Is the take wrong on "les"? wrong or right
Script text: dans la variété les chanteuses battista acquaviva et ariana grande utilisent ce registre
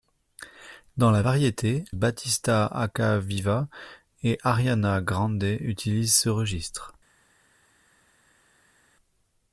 wrong